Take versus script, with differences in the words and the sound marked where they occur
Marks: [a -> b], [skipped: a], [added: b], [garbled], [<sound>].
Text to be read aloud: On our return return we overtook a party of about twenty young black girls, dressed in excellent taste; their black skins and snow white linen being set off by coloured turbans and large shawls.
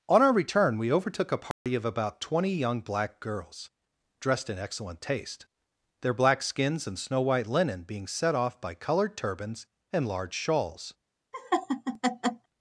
On our return [skipped: return] we overtook a party [dropout] of about twenty young black girls, dressed in excellent taste; their black skins and snow white linen being set off by coloured turbans and large shawls. [laugh]